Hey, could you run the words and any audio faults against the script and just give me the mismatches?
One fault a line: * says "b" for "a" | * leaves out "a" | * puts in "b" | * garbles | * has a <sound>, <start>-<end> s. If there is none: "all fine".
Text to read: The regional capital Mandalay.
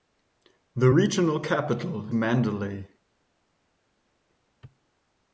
all fine